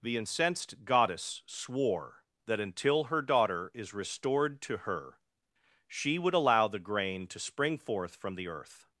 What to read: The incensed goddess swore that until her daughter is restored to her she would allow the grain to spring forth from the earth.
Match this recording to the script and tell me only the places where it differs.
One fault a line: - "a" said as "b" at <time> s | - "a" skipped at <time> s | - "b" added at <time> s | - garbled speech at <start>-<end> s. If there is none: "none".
none